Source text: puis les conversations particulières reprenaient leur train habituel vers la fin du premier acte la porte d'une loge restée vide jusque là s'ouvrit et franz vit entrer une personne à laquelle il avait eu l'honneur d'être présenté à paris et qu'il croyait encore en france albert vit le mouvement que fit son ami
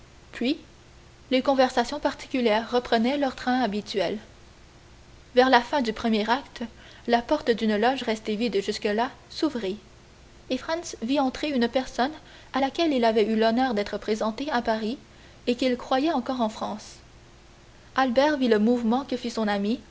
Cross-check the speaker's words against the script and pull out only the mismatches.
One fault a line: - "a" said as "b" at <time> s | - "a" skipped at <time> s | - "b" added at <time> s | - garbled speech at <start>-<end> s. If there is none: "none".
none